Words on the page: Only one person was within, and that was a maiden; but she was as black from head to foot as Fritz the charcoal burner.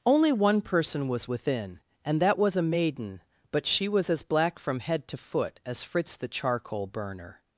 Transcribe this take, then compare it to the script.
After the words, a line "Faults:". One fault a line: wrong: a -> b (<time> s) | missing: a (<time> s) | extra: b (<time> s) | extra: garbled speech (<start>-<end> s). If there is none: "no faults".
Only one person was within, and that was a maiden; but she was as black from head to foot as Fritz the charcoal burner.
Faults:
no faults